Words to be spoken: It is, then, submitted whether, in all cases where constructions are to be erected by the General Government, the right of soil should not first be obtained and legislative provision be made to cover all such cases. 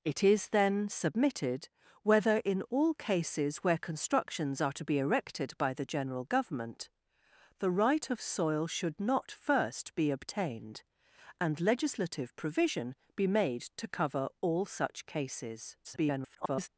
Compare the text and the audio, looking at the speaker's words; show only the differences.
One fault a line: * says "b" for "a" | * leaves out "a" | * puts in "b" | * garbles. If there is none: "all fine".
* garbles